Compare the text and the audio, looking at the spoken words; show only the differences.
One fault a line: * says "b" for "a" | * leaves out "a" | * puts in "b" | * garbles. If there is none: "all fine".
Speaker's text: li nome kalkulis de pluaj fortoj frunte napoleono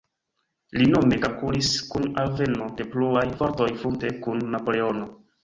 * puts in "kun alveno"
* puts in "kun"